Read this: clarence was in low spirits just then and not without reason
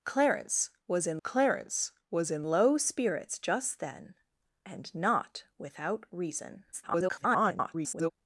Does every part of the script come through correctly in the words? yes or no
no